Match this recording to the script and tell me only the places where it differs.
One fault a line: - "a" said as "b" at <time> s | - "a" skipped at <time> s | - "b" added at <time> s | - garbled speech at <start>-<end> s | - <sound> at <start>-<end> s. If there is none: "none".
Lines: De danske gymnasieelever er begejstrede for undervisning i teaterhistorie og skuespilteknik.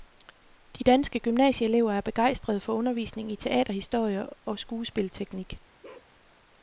- bark at 5.8-6.1 s